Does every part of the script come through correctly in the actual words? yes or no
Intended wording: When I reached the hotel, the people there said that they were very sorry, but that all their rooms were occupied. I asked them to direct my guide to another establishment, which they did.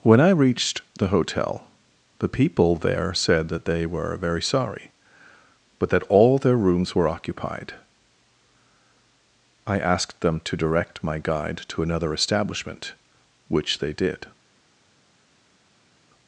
yes